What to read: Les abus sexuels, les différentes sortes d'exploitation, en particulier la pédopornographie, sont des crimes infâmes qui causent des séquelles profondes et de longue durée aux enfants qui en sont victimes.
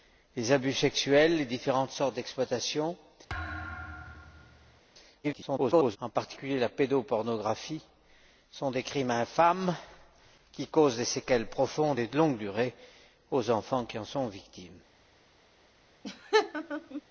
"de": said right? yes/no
yes